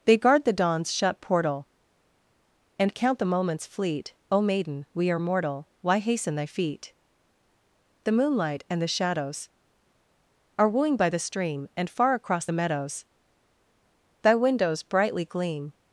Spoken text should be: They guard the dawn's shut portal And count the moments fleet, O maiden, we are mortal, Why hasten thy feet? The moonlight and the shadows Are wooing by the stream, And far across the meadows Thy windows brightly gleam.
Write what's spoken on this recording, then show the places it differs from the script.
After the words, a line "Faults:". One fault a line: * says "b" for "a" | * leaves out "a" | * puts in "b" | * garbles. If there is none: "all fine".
They guard the dawn's shut portal And count the moments fleet, O maiden, we are mortal, Why hasten thy feet? The moonlight and the shadows Are wooing by the stream, And far across the meadows Thy windows brightly gleam.
Faults:
all fine